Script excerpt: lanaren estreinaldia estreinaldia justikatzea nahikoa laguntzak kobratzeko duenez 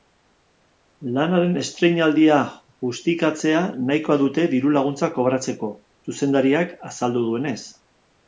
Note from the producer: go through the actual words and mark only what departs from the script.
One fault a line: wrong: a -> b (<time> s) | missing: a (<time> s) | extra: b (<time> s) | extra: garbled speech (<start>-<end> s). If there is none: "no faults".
missing: estreinaldia (2.4 s)
extra: dute diru (4.2 s)
extra: zuzendariak azaldu (6.1 s)